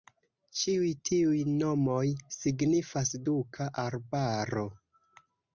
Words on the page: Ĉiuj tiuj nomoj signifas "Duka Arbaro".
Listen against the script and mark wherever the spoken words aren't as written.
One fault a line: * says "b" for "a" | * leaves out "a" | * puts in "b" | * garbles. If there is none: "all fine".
all fine